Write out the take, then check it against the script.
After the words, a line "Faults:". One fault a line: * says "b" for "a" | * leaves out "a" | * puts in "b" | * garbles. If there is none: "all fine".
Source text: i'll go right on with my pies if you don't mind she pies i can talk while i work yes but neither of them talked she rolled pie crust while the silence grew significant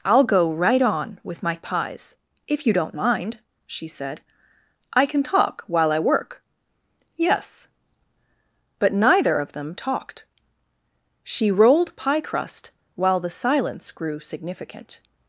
i'll go right on with my pies if you don't mind she said i can talk while i work yes but neither of them talked she rolled pie crust while the silence grew significant
Faults:
* says "said" for "pies"